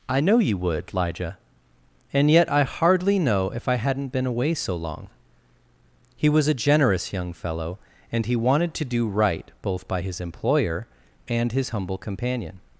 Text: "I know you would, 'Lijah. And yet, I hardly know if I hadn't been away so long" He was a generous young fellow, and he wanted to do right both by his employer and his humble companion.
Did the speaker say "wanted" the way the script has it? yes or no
yes